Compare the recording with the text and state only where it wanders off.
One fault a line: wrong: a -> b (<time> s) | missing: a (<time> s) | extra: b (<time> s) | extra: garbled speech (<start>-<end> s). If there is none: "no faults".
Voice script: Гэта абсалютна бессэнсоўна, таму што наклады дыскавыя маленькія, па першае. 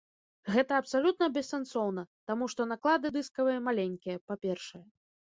no faults